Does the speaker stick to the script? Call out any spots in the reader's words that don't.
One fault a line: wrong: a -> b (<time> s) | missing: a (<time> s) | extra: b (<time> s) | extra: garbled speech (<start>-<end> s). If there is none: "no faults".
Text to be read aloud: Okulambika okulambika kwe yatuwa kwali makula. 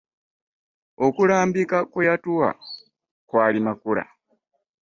missing: okulambika (1.8 s)